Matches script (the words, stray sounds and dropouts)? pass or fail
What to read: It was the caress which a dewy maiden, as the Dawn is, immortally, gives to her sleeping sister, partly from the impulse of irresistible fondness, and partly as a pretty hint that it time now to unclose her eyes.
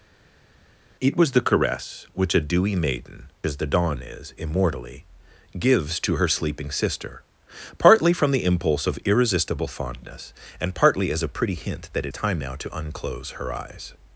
pass